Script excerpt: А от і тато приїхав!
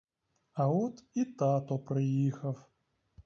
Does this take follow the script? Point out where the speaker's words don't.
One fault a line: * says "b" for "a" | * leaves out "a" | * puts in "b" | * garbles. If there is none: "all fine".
all fine